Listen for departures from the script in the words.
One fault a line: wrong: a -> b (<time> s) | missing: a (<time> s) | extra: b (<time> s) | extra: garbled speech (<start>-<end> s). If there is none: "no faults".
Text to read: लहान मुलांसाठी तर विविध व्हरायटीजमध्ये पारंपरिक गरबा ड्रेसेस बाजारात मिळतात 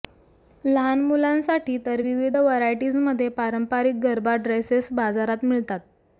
no faults